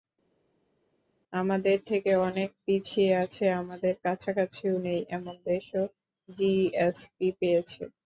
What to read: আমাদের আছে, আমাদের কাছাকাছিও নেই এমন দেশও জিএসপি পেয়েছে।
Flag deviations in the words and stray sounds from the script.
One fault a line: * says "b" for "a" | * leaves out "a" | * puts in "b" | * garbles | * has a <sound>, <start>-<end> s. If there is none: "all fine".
* puts in "থেকে অনেক পিছিয়ে"